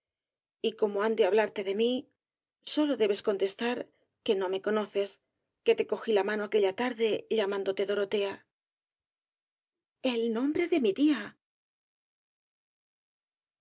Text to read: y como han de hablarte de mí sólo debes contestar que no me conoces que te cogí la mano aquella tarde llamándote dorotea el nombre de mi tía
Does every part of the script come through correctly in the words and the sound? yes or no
yes